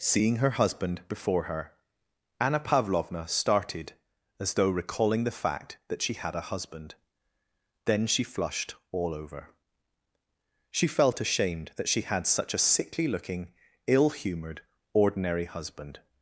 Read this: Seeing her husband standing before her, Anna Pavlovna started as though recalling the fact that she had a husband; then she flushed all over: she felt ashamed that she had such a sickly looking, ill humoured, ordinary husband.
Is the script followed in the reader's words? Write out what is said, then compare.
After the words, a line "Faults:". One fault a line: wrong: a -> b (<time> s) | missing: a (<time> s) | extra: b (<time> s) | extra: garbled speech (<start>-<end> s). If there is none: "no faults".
Seeing her husband before her, Anna Pavlovna started as though recalling the fact that she had a husband; then she flushed all over: she felt ashamed that she had such a sickly looking, ill humoured, ordinary husband.
Faults:
missing: standing (1.0 s)